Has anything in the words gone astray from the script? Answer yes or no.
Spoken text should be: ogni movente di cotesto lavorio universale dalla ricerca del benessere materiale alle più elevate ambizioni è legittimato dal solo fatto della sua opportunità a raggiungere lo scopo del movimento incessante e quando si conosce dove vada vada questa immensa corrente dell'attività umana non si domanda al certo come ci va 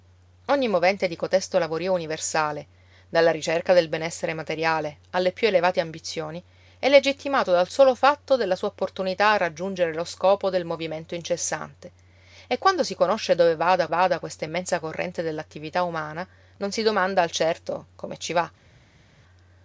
no